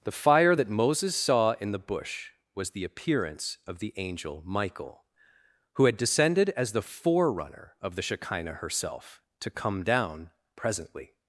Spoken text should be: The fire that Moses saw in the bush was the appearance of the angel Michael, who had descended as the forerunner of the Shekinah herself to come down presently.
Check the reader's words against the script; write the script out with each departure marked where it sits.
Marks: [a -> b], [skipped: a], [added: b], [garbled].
The fire that Moses saw in the bush was the appearance of the angel Michael, who had descended as the forerunner of the Shekinah herself to come down presently.